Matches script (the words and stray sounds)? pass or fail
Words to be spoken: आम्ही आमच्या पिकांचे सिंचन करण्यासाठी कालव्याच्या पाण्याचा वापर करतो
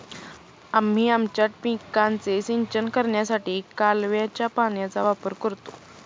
pass